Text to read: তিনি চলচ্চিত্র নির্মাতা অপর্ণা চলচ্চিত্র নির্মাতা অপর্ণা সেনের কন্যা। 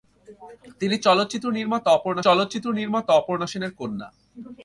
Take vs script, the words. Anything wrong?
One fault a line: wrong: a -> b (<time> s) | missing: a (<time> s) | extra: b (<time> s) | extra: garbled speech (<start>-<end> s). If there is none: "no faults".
no faults